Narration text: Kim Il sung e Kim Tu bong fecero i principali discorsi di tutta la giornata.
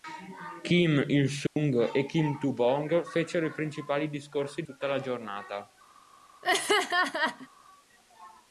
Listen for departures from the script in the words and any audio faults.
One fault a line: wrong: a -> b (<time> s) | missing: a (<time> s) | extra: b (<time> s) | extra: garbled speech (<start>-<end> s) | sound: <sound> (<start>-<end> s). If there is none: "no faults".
sound: dropout (1.5-1.6 s)
missing: di (4.6 s)
sound: laugh (6.4-7.5 s)